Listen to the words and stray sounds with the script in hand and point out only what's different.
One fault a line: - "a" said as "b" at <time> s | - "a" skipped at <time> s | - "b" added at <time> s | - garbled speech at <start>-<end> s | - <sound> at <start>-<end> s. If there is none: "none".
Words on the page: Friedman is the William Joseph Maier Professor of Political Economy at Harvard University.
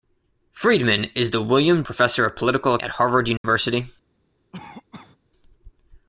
- "Joseph Maier" skipped at 1.8 s
- "Economy" skipped at 2.8 s
- dropout at 3.4-3.4 s
- cough at 4.5-5.2 s